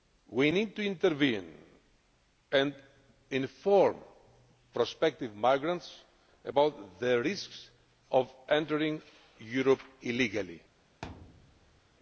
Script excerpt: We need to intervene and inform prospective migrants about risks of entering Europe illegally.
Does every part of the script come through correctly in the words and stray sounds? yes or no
no